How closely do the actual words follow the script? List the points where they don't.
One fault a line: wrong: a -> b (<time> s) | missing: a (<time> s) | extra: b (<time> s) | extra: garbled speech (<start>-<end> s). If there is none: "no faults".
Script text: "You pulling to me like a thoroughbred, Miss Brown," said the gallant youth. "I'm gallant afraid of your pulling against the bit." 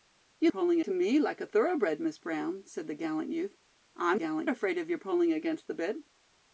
no faults